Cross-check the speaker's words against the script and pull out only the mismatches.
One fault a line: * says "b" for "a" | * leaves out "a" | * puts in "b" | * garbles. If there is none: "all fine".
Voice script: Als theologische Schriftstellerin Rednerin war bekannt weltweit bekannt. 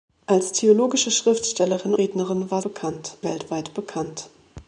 all fine